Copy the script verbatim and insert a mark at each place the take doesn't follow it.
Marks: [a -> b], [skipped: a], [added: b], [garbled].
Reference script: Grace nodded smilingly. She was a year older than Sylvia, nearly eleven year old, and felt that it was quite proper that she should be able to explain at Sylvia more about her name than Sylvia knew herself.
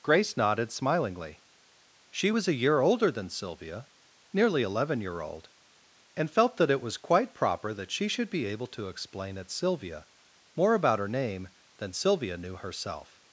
Grace nodded smilingly. She was a year older than Sylvia, nearly eleven year old, and felt that it was quite proper that she should be able to explain at Sylvia more about her name than Sylvia knew herself.